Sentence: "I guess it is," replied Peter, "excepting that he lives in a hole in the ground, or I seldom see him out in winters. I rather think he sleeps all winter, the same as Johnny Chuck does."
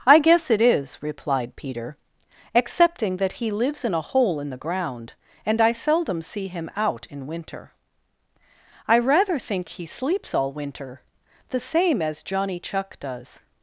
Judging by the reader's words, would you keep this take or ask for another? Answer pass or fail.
fail